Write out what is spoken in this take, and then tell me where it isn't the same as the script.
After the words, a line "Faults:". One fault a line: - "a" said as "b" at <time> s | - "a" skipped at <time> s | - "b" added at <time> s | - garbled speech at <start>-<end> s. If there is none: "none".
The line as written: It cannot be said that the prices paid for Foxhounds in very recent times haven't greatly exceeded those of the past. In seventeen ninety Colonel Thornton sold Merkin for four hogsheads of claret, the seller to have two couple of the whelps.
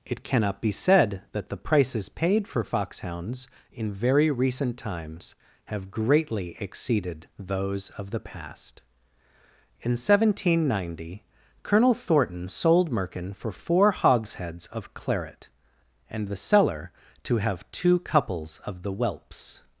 It cannot be said that the prices paid for Foxhounds in very recent times have greatly exceeded those of the past. In seventeen ninety Colonel Thornton sold Merkin for four hogsheads of claret, and the seller to have two couples of the whelps.
Faults:
- "haven't" said as "have" at 5.7 s
- "and" added at 16.1 s
- "couple" said as "couples" at 18.0 s